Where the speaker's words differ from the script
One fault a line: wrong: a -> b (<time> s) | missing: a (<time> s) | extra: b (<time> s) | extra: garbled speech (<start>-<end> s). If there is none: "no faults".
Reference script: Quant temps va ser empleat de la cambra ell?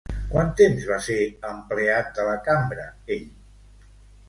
no faults